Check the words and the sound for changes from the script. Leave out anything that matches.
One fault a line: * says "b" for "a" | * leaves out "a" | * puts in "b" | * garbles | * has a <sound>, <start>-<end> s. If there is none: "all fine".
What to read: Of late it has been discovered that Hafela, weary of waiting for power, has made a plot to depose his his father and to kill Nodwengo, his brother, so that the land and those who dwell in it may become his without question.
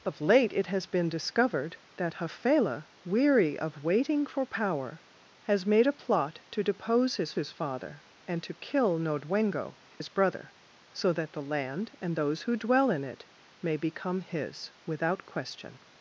* has a dropout, 10.0-10.0 s